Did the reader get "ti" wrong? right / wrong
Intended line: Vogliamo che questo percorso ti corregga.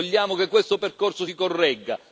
wrong